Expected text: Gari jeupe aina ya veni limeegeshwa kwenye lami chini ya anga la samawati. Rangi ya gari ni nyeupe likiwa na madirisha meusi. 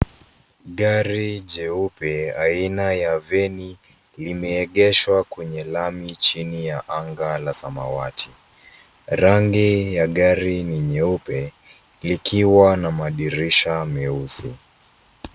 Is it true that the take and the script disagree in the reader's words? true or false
false